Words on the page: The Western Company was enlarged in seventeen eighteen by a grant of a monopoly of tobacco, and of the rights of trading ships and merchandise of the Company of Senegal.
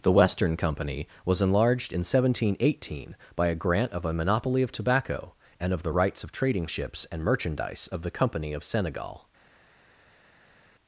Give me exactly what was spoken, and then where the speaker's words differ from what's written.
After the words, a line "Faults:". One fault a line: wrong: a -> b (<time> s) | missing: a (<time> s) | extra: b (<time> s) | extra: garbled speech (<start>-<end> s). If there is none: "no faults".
The Western Company was enlarged in seventeen eighteen by a grant of a monopoly of tobacco, and of the rights of trading ships and merchandise of the Company of Senegal.
Faults:
no faults